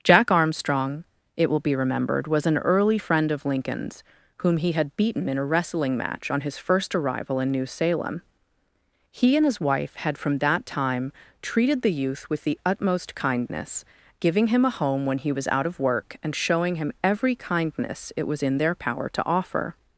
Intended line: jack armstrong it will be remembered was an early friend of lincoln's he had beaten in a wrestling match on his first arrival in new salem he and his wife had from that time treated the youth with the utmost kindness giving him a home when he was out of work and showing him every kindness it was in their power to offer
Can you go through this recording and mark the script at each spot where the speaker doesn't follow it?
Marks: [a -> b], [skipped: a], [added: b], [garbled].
jack armstrong it will be remembered was an early friend of lincoln's [added: whom] he had beaten in a wrestling match on his first arrival in new salem he and his wife had from that time treated the youth with the utmost kindness giving him a home when he was out of work and showing him every kindness it was in their power to offer